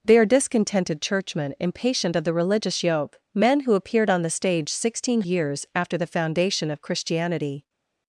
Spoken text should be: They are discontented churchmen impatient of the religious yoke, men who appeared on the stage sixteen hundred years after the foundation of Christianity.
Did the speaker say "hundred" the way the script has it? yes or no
no